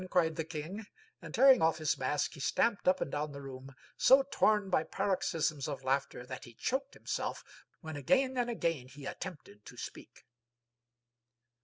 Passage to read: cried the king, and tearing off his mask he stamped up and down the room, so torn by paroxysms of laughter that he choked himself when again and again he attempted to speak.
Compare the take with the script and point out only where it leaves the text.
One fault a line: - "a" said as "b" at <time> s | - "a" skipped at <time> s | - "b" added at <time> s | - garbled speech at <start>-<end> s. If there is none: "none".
none